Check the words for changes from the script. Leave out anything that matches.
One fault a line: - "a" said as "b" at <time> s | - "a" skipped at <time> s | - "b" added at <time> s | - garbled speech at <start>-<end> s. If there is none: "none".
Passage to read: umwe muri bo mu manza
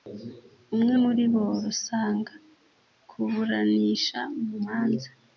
- "rusanga kuburanisha" added at 1.6 s